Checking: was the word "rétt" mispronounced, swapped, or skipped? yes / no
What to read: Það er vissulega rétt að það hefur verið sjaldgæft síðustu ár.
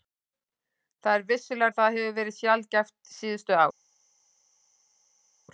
yes